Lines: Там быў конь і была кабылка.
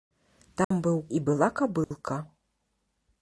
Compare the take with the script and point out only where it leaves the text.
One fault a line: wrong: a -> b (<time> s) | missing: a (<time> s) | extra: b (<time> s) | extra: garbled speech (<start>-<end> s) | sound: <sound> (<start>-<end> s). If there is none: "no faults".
sound: dropout (0.6-0.7 s)
missing: конь (1.0 s)
sound: dropout (1.8-1.9 s)